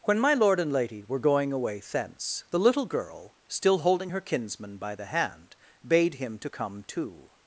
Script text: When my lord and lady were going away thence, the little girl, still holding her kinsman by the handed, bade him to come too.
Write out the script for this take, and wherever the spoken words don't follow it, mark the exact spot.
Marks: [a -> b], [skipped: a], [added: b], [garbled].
When my lord and lady were going away thence, the little girl, still holding her kinsman by the [handed, -> hand] bade him to come too.